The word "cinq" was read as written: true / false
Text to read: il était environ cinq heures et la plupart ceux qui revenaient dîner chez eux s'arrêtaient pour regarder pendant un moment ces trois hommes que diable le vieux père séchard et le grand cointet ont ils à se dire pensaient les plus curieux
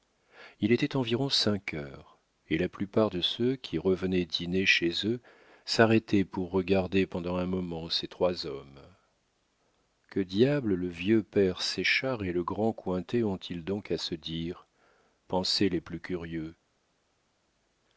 true